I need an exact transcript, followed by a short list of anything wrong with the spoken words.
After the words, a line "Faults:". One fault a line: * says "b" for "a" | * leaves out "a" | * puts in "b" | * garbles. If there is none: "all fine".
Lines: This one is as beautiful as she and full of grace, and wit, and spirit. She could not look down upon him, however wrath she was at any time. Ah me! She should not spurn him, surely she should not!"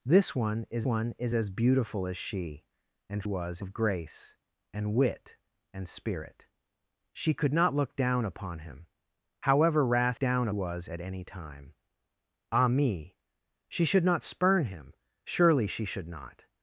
This one is one is as beautiful as she and was of grace, and wit, and spirit. She could not look down upon him, however wrath down was at any time. Ah me! She should not spurn him, surely she should not!"
Faults:
* puts in "one is"
* says "was" for "full"
* says "down" for "she"